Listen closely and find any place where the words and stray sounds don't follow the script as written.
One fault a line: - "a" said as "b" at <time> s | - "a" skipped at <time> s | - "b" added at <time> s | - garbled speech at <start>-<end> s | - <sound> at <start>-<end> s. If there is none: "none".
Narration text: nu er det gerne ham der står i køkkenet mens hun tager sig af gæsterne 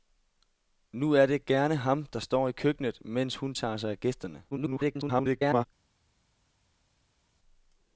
- garbled speech at 4.5-5.7 s